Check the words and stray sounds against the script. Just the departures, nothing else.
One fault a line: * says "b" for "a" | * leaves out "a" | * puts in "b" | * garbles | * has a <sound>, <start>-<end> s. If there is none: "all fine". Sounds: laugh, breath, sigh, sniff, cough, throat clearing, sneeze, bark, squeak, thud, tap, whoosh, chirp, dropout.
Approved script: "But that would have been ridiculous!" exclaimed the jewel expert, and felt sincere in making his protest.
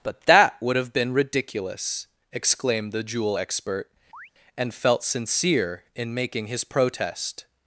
* has a chirp, 4.1-4.3 s